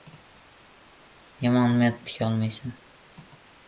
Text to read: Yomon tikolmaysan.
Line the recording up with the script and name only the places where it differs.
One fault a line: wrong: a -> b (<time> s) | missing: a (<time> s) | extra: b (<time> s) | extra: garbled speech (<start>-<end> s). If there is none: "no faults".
no faults